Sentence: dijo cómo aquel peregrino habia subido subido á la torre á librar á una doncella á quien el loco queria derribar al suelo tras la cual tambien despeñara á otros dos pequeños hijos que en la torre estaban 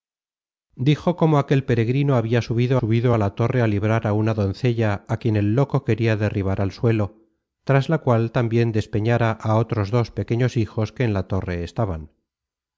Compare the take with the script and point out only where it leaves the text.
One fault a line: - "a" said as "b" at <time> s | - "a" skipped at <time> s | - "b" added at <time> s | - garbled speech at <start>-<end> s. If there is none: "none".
none